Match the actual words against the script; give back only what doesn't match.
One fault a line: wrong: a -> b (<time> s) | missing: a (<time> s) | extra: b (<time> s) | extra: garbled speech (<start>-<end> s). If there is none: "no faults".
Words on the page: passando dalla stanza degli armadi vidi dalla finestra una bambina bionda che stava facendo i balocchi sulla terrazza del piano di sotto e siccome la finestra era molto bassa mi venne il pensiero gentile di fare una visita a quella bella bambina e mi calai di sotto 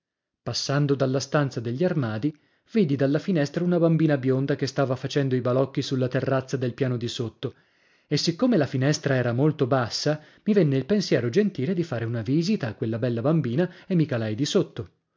no faults